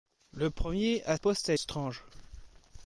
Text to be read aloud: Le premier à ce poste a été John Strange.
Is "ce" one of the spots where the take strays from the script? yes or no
yes